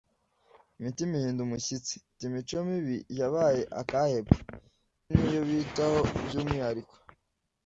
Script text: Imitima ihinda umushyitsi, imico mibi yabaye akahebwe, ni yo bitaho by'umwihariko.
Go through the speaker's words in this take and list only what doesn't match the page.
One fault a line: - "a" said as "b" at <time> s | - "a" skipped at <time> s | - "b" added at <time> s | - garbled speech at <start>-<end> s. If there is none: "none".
none